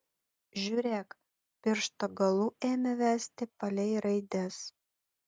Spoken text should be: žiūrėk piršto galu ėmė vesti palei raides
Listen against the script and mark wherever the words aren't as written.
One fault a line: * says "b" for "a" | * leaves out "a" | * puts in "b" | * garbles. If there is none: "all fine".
all fine